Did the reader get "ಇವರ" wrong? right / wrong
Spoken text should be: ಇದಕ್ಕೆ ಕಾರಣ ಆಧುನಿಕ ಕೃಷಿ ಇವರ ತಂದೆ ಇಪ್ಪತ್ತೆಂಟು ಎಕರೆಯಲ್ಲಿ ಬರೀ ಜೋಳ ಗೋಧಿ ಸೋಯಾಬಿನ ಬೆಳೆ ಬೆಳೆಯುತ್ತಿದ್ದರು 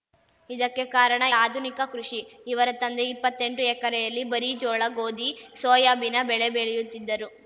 right